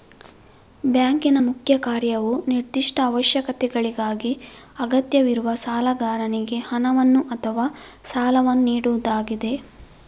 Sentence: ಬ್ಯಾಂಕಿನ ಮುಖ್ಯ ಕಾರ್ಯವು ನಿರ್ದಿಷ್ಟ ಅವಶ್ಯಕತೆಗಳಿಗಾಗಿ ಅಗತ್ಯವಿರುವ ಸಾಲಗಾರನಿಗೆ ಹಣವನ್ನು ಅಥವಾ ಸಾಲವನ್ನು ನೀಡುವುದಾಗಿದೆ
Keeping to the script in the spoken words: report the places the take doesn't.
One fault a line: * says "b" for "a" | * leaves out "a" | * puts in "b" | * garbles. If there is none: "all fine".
all fine